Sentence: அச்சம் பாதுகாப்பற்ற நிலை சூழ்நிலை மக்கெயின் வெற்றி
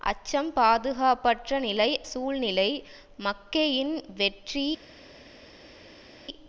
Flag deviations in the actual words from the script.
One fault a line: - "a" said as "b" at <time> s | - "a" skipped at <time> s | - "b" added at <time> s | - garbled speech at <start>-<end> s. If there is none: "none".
none